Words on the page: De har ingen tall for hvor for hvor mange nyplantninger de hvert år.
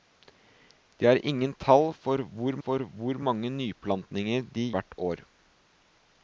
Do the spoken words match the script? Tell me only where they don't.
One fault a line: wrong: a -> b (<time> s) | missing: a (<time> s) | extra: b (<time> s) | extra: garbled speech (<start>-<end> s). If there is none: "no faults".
no faults